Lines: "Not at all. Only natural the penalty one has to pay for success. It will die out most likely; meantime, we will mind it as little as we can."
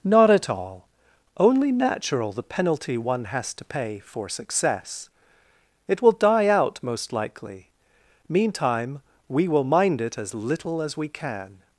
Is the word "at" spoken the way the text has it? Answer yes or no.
yes